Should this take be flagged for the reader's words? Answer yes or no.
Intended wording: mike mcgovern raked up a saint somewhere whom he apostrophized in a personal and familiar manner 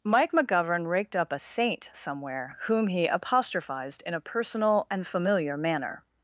no